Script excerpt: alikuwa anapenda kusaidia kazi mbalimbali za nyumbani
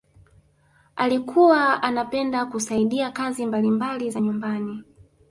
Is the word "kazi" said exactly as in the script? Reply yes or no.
yes